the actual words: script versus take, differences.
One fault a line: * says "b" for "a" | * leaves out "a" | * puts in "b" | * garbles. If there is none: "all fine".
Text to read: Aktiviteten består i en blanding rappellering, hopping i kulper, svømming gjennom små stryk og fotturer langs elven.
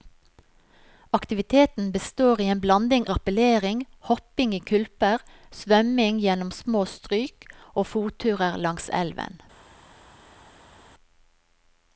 all fine